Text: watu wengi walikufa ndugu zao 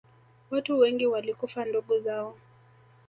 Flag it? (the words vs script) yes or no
no